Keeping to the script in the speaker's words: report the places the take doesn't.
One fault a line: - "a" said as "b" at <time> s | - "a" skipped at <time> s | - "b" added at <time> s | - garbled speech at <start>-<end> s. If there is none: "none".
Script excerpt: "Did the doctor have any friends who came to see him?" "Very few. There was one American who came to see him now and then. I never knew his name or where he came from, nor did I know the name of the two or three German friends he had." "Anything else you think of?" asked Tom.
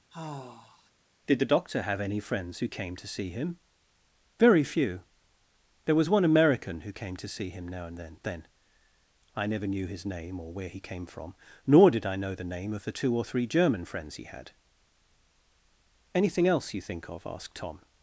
- "then" added at 8.2 s